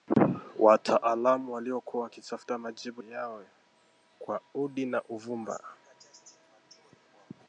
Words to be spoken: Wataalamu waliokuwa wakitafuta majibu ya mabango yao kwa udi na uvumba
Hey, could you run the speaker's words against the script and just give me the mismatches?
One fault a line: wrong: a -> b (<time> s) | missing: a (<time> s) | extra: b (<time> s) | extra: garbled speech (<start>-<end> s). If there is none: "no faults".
missing: ya mabango (3.0 s)